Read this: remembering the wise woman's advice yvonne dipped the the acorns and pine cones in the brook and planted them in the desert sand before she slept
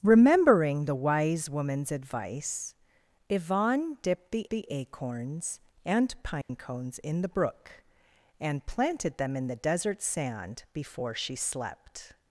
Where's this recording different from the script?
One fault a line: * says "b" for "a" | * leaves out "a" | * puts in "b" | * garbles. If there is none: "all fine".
all fine